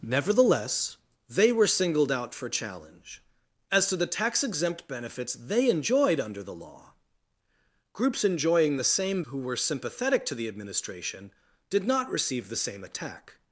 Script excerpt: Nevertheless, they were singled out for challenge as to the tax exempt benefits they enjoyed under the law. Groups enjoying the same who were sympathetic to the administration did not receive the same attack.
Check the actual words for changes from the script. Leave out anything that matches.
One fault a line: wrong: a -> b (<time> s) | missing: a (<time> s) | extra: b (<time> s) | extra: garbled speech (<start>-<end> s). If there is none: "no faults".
no faults